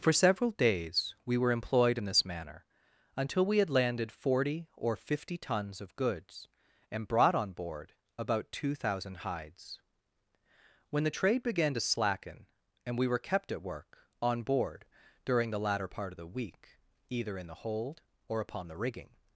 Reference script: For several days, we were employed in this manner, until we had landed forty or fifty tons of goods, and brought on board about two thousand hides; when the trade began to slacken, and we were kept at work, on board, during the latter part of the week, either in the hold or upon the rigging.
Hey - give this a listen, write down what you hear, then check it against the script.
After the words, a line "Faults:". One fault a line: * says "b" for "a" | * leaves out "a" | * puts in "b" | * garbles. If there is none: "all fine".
For several days, we were employed in this manner, until we had landed forty or fifty tons of goods, and brought on board about two thousand hides; when the trade began to slacken, and we were kept at work, on board, during the latter part of the week, either in the hold or upon the rigging.
Faults:
all fine